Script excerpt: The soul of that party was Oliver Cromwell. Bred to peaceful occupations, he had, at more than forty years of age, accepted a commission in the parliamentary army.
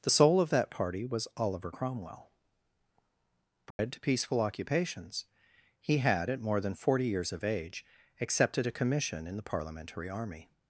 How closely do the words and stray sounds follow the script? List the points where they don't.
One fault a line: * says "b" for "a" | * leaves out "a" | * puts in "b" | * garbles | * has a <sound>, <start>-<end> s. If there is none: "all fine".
* has a dropout, 3.7-3.8 s